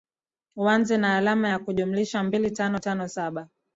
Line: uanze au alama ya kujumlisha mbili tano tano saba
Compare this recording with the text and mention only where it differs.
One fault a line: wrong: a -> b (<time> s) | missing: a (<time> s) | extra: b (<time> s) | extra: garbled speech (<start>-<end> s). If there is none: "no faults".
wrong: au -> na (1.0 s)